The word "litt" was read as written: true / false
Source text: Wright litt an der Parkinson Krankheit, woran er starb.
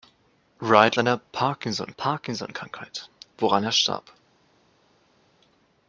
false